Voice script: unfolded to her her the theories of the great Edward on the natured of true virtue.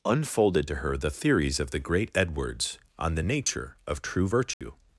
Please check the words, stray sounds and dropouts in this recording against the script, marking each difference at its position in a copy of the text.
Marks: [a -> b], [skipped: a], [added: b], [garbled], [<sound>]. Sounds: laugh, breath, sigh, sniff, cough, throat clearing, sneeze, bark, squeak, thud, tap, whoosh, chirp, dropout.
unfolded to her [skipped: her] the theories of the great [Edward -> Edwards] on the [natured -> nature] of true virtue. [dropout]